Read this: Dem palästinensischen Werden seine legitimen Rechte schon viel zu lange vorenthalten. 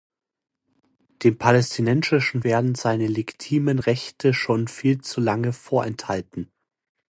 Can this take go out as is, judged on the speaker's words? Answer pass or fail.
pass